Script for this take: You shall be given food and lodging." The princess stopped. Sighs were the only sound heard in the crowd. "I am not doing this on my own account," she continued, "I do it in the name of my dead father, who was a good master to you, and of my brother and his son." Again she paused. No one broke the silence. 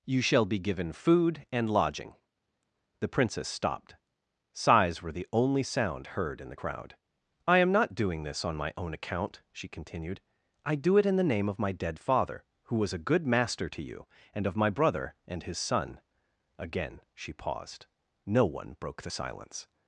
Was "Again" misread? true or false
false